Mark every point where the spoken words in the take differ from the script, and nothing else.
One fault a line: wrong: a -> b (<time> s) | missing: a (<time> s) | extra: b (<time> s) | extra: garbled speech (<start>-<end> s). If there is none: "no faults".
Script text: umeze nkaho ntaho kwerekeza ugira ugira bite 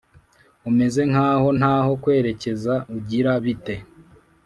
missing: ugira (3.3 s)